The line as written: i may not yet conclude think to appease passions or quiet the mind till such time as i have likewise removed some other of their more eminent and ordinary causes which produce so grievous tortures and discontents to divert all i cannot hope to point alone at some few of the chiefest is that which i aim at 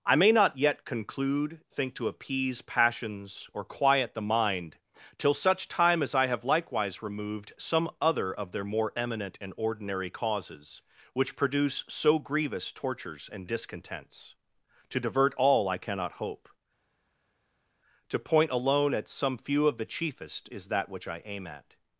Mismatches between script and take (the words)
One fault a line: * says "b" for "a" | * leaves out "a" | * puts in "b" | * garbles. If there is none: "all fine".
all fine